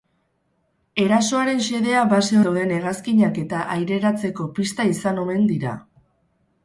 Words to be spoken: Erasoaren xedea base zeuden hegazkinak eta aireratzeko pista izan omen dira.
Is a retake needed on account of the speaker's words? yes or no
no